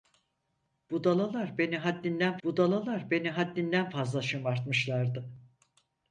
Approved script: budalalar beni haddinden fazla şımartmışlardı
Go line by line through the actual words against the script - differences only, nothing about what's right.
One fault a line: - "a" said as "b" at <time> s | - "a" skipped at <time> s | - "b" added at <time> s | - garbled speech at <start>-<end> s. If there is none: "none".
- "budalalar beni haddinden" added at 2.4 s